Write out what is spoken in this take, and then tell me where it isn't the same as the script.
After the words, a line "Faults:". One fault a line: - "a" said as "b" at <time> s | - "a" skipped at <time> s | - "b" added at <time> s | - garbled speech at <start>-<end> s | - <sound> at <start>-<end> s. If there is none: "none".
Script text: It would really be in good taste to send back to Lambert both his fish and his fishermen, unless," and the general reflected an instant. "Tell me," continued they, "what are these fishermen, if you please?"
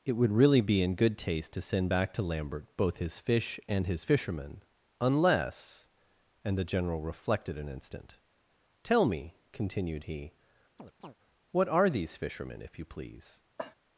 It would really be in good taste to send back to Lambert both his fish and his fishermen, unless," and the general reflected an instant. "Tell me," continued he, "what are these fishermen, if you please?"
Faults:
- "they" said as "he" at 10.0 s
- chirp at 10.8-11.2 s
- cough at 13.6-13.7 s